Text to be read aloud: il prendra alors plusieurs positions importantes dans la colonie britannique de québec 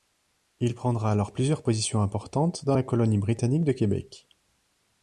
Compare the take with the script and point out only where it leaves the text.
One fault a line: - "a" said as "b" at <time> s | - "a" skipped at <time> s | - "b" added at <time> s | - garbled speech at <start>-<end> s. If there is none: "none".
none